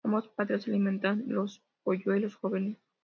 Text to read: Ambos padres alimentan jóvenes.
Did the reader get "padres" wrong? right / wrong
right